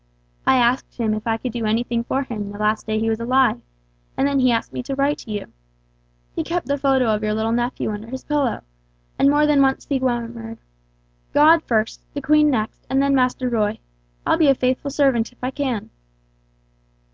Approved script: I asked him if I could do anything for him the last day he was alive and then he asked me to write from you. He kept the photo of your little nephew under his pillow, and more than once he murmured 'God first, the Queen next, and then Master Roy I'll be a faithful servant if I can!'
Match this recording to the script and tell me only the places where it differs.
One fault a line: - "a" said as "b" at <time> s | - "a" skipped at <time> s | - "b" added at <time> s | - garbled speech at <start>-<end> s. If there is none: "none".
- "from" said as "to" at 5.2 s